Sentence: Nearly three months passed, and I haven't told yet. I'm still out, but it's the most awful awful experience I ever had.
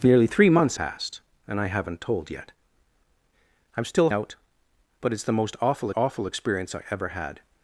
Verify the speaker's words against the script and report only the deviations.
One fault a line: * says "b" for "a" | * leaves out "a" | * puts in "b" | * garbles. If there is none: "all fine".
all fine